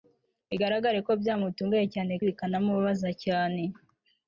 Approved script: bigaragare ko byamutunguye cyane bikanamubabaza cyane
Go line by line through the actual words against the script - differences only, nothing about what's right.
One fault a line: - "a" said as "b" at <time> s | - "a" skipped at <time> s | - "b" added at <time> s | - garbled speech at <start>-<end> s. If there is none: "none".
none